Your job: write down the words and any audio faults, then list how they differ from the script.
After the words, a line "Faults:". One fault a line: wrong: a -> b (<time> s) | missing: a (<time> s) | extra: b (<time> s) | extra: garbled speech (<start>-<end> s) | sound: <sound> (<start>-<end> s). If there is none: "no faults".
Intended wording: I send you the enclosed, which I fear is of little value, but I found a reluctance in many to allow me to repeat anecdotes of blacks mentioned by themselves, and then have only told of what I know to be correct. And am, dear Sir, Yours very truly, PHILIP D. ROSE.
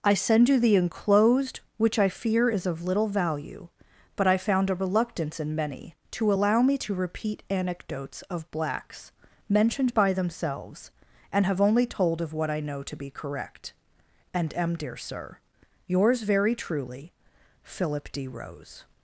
I send you the enclosed, which I fear is of little value, but I found a reluctance in many to allow me to repeat anecdotes of blacks mentioned by themselves, and have only told of what I know to be correct. And am, dear Sir, Yours very truly, PHILIP D. ROSE.
Faults:
missing: then (11.5 s)